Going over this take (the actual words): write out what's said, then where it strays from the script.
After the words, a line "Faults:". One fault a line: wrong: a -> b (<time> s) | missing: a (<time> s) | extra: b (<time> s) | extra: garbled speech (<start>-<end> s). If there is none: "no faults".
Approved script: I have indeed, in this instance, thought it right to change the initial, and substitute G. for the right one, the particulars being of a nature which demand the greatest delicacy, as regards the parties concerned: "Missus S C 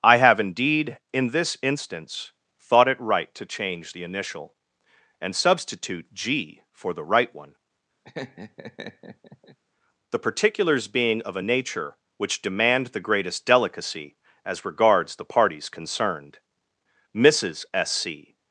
I have indeed, in this instance, thought it right to change the initial, and substitute G. for the right one, the particulars being of a nature which demand the greatest delicacy, as regards the parties concerned: "Missus S C
Faults:
no faults